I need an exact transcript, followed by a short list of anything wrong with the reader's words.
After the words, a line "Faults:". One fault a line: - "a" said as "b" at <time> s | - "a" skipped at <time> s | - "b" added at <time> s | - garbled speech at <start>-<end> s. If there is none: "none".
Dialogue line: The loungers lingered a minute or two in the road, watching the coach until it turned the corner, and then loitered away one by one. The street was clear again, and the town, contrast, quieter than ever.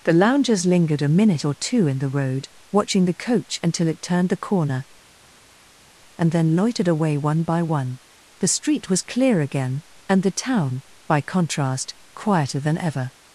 The loungers lingered a minute or two in the road, watching the coach until it turned the corner, and then loitered away one by one. The street was clear again, and the town, by contrast, quieter than ever.
Faults:
- "by" added at 11.1 s